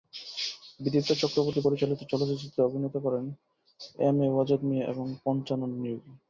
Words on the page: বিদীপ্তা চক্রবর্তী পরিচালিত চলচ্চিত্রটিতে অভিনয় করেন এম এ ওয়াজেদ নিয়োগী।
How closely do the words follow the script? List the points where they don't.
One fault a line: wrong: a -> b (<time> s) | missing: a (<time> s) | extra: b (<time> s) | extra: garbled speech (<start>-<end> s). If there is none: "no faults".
extra: মিয়া এবং পঞ্চানন (4.7 s)